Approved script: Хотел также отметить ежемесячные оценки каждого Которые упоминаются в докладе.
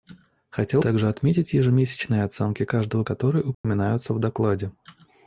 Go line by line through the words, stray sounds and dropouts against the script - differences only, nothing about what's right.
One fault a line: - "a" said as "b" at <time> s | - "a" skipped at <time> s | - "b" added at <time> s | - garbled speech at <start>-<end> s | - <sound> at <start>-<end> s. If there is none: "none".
- dropout at 3.5-3.6 s